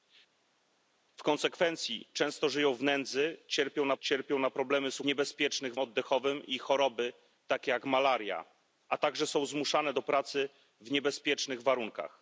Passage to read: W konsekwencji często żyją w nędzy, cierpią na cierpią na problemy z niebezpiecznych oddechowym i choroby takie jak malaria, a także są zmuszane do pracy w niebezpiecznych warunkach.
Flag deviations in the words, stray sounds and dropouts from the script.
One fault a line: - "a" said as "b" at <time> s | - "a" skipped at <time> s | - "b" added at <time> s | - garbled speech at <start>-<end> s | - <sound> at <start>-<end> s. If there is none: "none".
none